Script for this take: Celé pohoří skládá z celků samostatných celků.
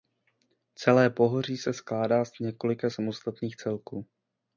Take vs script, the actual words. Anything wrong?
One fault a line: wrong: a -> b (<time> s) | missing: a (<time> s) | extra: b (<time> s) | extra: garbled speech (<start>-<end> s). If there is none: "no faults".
extra: se (1.6 s)
wrong: celků -> několika (2.4 s)